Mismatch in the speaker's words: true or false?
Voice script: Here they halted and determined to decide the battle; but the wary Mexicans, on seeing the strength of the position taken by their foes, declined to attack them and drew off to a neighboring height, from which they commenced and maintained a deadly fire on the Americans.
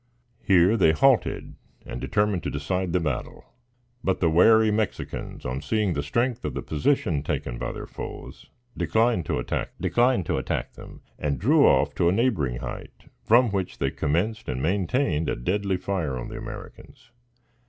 true